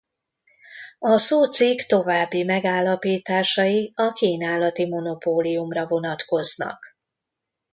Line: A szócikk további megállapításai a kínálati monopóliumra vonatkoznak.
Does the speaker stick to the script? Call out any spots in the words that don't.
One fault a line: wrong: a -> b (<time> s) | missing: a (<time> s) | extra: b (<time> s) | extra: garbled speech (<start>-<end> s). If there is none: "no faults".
no faults